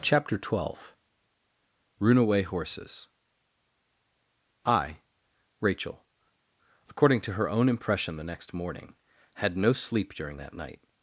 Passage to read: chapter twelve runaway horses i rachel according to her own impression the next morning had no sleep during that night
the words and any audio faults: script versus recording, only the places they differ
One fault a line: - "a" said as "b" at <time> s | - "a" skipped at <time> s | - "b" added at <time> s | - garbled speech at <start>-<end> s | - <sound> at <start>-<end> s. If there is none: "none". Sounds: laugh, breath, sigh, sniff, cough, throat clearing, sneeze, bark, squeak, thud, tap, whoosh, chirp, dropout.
none